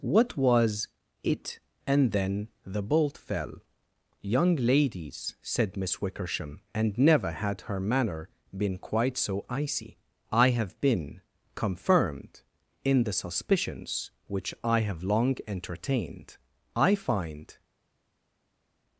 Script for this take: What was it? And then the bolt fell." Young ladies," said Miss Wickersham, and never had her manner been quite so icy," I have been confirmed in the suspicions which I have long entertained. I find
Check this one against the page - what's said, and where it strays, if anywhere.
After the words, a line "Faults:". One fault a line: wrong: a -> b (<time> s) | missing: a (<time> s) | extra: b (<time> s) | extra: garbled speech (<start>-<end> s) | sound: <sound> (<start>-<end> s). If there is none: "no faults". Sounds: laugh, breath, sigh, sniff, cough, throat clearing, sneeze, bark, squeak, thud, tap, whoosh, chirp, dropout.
What was it? And then the bolt fell." Young ladies," said Miss Wickersham, and never had her manner been quite so icy," I have been confirmed in the suspicions which I have long entertained. I find
Faults:
no faults